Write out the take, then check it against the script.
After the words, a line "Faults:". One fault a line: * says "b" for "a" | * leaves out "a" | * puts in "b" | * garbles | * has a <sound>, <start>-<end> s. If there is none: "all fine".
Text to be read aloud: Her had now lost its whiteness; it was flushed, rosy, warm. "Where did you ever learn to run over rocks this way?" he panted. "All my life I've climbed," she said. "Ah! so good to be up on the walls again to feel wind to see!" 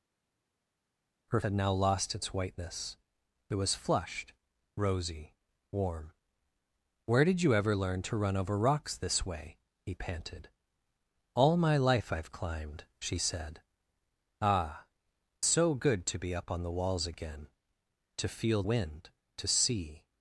Her had now lost its whiteness; it was flushed, rosy, warm. "Where did you ever learn to run over rocks this way?" he panted. "All my life I've climbed," she said. "Ah! so good to be up on the walls again to feel wind to see!"
Faults:
all fine